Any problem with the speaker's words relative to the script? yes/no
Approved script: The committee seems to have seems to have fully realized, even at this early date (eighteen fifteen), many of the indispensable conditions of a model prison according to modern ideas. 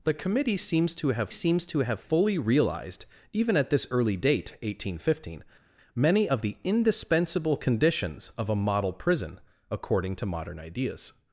no